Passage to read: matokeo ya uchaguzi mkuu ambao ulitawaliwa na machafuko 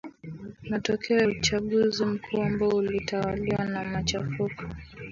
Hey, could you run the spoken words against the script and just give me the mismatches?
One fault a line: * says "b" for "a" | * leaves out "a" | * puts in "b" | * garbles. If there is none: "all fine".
* leaves out "ya"